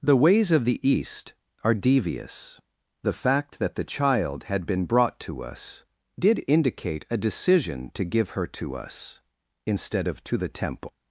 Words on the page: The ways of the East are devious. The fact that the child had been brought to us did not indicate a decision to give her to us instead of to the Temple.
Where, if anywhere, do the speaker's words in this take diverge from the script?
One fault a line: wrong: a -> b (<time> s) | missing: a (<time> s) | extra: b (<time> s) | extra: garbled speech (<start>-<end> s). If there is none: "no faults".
missing: not (6.4 s)